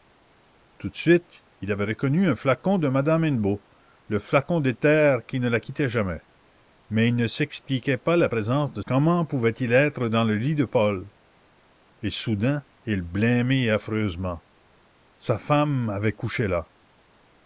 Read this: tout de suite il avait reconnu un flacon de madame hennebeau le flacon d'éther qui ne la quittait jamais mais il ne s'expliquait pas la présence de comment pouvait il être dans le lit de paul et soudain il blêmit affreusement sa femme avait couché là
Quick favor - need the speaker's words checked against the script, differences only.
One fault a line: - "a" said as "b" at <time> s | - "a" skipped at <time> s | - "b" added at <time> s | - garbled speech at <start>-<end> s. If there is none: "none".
none